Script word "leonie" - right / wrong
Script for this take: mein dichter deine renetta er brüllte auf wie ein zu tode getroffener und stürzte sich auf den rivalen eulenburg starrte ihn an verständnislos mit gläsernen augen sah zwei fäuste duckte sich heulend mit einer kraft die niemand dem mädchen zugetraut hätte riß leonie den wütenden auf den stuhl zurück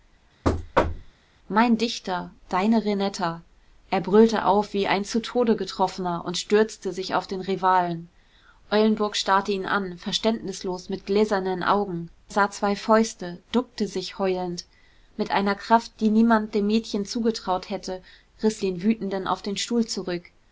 wrong